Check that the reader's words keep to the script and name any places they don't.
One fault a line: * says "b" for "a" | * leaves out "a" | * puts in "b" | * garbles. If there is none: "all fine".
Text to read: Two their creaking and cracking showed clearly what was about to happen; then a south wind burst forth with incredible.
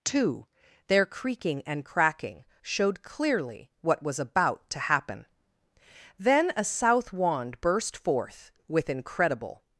* says "wand" for "wind"